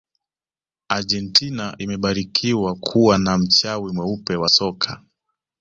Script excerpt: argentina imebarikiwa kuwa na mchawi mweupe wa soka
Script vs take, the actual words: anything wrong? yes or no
no